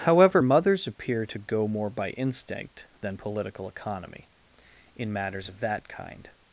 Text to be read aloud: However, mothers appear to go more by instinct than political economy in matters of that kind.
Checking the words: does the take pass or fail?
pass